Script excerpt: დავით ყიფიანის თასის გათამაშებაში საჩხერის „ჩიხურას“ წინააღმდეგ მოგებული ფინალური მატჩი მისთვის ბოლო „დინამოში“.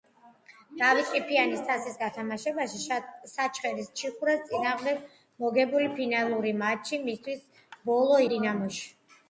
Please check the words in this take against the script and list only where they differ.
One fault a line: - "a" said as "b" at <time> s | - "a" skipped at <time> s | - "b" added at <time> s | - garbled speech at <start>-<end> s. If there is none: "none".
none